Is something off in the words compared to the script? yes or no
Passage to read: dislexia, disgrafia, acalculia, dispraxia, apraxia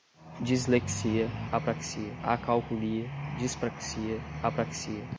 yes